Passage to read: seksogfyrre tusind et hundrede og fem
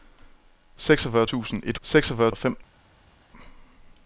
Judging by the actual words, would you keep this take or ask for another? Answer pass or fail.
fail